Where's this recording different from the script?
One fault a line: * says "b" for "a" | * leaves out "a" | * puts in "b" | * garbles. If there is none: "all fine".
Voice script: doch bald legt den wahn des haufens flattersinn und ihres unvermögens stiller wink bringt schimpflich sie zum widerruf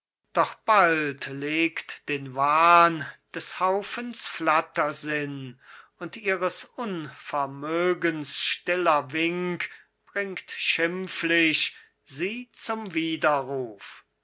all fine